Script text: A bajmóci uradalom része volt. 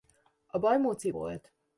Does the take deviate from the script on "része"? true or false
true